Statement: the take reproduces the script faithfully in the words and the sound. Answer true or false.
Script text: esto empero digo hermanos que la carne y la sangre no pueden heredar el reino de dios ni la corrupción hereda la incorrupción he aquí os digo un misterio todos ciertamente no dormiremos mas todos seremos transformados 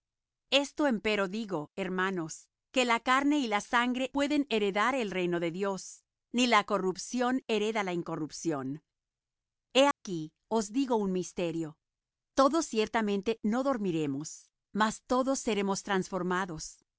false